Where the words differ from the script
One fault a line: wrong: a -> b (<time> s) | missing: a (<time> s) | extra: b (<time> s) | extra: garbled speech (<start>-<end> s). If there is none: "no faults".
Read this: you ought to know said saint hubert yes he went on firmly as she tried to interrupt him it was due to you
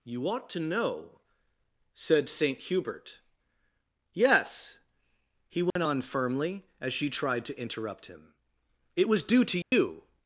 no faults